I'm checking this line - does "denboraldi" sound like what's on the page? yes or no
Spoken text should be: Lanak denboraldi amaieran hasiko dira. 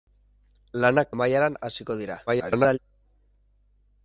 no